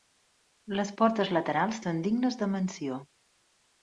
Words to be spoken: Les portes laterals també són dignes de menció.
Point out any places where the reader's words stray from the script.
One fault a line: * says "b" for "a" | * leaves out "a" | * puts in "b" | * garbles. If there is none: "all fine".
* leaves out "també"